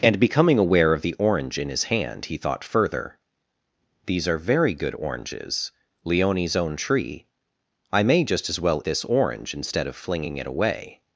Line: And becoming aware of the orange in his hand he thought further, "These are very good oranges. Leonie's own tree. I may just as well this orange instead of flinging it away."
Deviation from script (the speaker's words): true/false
false